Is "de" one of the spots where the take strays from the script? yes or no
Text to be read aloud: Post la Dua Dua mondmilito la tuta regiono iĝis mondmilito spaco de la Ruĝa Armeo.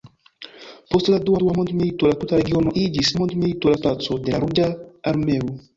no